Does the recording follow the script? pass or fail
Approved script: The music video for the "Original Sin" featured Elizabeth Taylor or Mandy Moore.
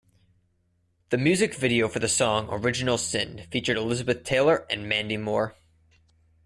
fail